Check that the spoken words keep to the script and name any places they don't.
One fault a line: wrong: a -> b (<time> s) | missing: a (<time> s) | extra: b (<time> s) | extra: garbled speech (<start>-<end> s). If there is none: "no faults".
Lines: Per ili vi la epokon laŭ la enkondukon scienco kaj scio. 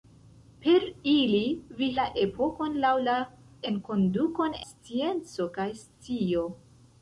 no faults